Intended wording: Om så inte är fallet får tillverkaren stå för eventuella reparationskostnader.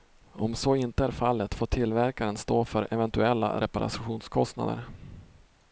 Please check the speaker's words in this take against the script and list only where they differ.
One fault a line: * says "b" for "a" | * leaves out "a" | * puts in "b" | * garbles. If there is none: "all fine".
all fine